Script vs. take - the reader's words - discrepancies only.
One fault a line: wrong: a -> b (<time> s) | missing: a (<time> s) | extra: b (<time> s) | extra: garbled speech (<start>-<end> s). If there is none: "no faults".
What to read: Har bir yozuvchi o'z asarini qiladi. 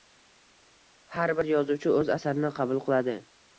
extra: qabul (2.6 s)